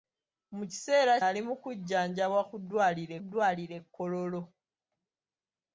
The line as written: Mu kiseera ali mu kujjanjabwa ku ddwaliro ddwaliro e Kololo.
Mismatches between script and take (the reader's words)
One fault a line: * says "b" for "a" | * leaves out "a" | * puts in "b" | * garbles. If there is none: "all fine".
all fine